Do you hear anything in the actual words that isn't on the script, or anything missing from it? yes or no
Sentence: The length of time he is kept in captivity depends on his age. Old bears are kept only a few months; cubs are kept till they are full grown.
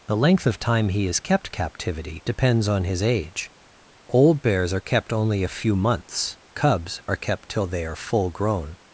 yes